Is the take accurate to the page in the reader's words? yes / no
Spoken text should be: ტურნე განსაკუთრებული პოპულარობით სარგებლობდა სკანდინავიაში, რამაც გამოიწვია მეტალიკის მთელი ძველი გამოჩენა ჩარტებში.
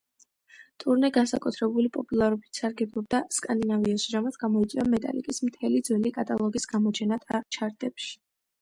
no